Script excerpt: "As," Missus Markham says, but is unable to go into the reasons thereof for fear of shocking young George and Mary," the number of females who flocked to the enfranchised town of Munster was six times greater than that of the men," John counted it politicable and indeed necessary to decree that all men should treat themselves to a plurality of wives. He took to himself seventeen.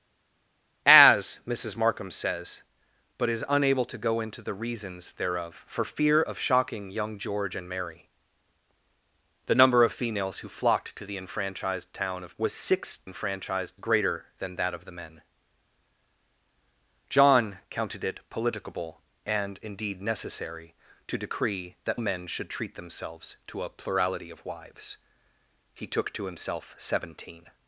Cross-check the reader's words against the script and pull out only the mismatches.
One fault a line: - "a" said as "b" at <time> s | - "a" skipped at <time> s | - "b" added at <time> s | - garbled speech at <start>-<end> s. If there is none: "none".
- "Munster" skipped at 12.4 s
- "times" said as "enfranchised" at 13.0 s
- "all" skipped at 22.0 s